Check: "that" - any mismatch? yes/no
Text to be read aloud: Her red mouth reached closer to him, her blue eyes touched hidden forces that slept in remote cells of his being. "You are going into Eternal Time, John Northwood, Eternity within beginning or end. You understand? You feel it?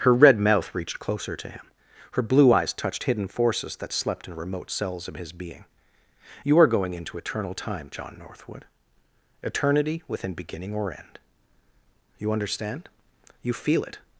no